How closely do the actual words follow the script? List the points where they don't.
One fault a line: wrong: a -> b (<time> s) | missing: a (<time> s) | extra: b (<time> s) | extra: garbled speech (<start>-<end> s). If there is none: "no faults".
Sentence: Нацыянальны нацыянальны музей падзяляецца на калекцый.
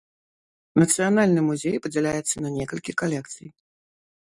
missing: нацыянальны (1.4 s)
extra: некалькі (2.6 s)